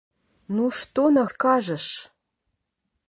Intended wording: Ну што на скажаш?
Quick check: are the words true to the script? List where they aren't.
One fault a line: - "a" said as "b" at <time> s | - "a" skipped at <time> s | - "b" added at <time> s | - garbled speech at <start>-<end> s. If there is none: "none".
none